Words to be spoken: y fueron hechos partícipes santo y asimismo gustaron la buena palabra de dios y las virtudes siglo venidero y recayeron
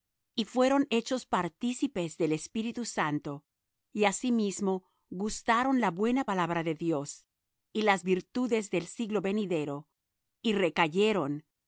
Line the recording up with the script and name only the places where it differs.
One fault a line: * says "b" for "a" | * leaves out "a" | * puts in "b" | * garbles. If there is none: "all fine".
* puts in "del espíritu"
* puts in "del"